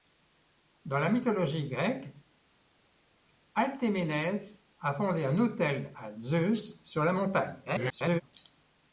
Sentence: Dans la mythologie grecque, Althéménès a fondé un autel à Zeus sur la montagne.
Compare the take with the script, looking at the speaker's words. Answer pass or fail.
fail